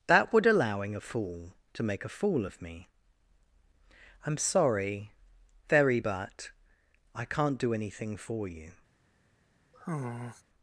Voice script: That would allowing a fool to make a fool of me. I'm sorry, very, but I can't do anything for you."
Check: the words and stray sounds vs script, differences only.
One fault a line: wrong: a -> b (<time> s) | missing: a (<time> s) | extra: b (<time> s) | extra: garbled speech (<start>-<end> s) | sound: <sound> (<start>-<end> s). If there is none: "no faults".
sound: sigh (9.7-10.4 s)